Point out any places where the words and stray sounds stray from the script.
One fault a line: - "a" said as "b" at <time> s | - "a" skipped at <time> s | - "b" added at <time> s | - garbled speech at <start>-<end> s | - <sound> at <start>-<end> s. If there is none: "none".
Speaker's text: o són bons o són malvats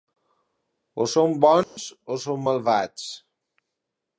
- dropout at 1.6-1.8 s